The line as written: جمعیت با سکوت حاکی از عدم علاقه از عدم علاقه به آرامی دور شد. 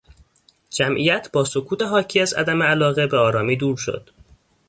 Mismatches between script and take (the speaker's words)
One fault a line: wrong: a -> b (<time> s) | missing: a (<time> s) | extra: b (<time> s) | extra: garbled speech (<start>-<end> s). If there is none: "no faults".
missing: از عدم علاقه (3.1 s)